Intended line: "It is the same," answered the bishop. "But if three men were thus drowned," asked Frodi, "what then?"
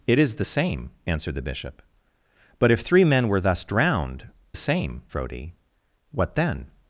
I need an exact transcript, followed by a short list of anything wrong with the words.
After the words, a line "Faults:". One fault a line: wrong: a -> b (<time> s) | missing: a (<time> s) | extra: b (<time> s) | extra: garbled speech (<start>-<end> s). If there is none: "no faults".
"It is the same," answered the bishop. "But if three men were thus drowned," same Frodi, "what then?"
Faults:
wrong: asked -> same (4.5 s)